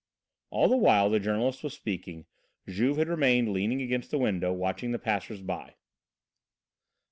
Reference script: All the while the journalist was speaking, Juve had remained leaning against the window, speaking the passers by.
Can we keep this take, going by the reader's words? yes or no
no